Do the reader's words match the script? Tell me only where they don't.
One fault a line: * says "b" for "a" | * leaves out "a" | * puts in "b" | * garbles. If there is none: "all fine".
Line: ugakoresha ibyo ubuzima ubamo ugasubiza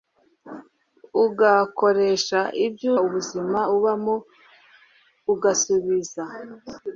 all fine